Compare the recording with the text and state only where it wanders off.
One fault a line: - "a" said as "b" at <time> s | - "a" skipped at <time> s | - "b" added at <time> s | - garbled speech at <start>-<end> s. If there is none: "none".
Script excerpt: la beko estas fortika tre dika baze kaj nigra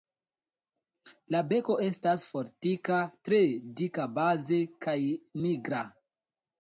none